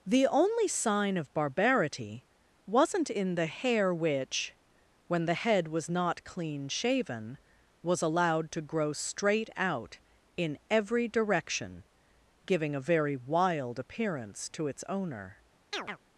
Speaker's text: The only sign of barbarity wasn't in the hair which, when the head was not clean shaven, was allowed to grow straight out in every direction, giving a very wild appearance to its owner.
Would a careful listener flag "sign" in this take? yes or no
no